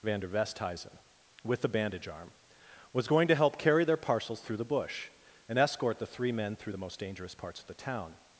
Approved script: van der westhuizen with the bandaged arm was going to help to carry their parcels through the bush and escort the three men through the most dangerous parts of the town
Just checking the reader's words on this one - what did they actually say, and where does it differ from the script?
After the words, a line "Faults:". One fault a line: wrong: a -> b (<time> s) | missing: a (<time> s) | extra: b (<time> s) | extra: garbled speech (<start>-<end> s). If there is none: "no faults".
van der westhuizen with the bandage arm was going to help carry their parcels through the bush and escort the three men through the most dangerous parts of the town
Faults:
wrong: bandaged -> bandage (1.7 s)
missing: to (3.6 s)